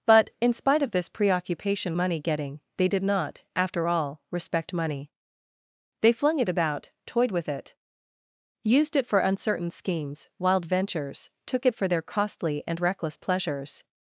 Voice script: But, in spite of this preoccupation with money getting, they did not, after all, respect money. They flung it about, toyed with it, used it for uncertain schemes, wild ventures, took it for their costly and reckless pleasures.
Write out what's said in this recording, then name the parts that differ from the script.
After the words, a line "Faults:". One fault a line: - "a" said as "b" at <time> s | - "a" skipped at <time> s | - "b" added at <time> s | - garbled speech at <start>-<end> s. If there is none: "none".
But, in spite of this preoccupation money getting, they did not, after all, respect money. They flung it about, toyed with it, used it for uncertain schemes, wild ventures, took it for their costly and reckless pleasures.
Faults:
- "with" skipped at 1.9 s